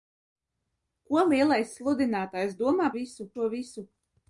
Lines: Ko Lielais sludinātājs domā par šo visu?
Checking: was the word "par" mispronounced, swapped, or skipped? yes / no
yes